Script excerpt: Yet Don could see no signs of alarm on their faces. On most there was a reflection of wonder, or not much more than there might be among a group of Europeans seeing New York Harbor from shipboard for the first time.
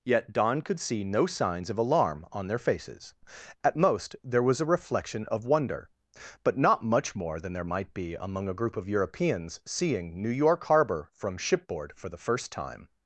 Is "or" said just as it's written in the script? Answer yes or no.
no